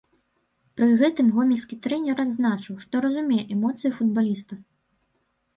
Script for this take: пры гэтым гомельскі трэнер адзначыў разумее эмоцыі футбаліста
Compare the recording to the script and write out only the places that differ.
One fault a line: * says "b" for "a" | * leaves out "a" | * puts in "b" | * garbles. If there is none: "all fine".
* puts in "што"